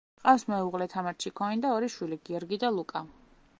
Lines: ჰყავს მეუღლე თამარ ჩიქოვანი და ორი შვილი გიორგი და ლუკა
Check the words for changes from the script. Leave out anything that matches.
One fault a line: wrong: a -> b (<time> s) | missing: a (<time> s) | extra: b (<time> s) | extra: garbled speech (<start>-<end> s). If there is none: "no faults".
no faults